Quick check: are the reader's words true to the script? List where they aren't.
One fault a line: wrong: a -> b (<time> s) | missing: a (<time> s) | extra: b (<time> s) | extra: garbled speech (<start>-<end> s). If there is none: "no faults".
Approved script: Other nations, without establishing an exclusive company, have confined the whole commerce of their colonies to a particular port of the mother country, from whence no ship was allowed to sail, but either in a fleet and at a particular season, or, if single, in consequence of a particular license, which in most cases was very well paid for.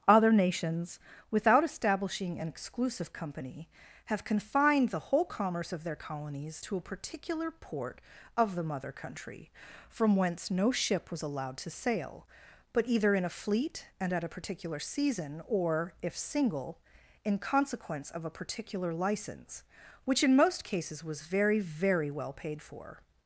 extra: very (21.6 s)